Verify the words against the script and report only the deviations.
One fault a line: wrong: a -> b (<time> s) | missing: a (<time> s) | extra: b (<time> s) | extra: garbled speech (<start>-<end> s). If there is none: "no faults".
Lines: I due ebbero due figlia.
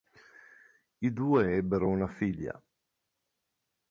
wrong: due -> una (1.9 s)